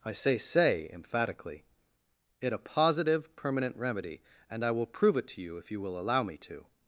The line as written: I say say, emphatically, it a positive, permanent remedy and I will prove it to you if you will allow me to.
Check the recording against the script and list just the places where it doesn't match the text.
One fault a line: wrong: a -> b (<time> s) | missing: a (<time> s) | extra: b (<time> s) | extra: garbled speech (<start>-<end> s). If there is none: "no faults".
no faults